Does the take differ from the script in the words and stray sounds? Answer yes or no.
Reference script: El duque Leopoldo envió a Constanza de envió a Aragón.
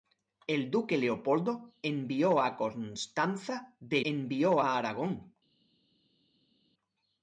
no